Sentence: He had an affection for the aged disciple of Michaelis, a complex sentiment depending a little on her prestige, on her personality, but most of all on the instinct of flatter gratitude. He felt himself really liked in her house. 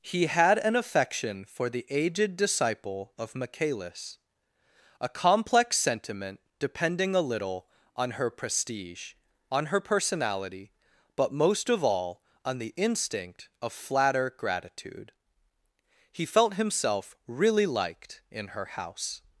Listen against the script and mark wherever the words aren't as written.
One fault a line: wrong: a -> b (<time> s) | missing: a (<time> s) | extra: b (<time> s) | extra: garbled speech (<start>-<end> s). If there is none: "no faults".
no faults